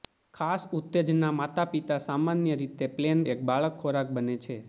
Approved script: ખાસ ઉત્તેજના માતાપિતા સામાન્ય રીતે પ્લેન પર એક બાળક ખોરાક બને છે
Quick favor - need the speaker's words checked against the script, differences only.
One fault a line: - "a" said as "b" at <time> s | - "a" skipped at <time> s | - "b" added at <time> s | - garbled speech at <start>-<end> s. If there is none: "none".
- "પર" skipped at 3.2 s